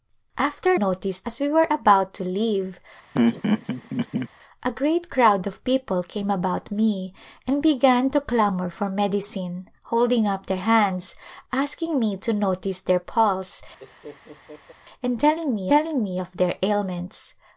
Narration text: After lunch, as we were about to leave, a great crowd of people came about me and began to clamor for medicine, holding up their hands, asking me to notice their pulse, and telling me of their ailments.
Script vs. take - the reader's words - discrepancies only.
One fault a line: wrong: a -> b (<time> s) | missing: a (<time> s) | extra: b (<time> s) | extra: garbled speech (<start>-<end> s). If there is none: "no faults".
wrong: lunch -> notice (0.7 s)
extra: telling me (15.7 s)